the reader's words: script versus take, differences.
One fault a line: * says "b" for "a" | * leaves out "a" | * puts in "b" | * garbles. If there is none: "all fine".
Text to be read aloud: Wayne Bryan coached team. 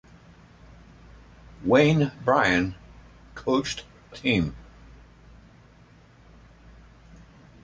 all fine